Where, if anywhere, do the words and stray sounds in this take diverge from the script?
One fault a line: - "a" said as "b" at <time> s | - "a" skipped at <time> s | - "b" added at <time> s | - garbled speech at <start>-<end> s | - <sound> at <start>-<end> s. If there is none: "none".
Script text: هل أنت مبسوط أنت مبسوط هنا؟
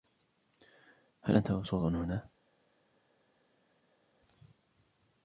- "أنت مبسوط" skipped at 1.8 s